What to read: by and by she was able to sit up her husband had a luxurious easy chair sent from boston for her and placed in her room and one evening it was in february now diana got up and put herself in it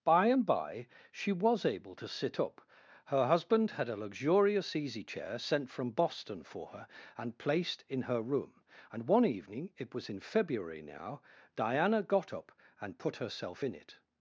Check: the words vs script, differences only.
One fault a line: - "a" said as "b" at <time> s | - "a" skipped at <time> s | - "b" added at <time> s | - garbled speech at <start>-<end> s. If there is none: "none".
none